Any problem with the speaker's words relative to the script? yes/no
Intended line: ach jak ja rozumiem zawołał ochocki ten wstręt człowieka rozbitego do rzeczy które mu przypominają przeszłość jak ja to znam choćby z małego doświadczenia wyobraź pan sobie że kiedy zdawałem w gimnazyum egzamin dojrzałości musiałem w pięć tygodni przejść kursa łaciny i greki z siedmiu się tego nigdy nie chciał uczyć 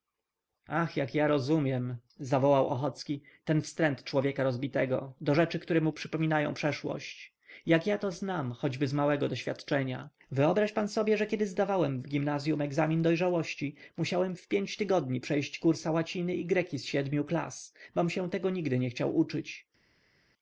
yes